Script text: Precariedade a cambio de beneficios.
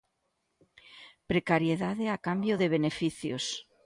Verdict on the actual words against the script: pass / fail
pass